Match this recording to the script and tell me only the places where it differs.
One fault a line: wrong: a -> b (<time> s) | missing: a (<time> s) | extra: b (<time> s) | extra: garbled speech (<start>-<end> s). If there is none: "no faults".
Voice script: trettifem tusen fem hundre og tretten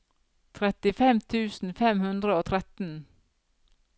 no faults